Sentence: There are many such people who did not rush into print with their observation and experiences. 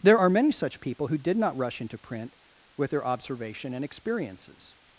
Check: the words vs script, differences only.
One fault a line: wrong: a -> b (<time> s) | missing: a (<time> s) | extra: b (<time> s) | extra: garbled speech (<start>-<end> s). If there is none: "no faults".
no faults